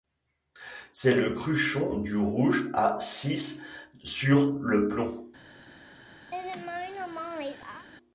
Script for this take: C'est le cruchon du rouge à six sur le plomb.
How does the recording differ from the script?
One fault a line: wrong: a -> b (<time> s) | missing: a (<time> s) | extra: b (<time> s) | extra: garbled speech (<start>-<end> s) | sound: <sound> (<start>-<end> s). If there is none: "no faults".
sound: laugh (6.3-7.9 s)